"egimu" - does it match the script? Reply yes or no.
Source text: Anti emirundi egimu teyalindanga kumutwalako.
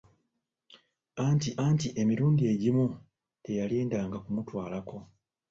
yes